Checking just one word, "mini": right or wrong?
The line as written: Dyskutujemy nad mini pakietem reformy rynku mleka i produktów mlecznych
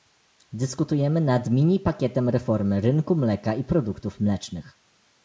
right